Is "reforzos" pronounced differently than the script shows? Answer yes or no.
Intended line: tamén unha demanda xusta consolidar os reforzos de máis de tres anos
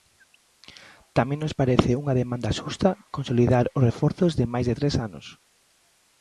no